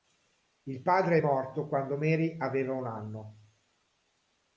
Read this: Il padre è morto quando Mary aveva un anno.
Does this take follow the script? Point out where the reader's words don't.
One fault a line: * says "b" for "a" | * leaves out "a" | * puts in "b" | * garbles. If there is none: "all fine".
all fine